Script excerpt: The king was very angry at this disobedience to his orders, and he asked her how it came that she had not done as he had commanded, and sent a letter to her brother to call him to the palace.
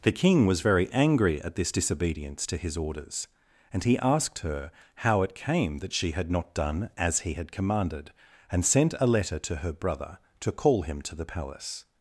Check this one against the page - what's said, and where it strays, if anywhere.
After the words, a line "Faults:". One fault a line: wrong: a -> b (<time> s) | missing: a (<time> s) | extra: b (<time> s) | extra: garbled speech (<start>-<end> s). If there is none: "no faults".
The king was very angry at this disobedience to his orders, and he asked her how it came that she had not done as he had commanded, and sent a letter to her brother to call him to the palace.
Faults:
no faults